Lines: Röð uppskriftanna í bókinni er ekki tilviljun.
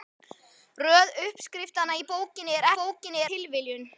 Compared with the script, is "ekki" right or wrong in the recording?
wrong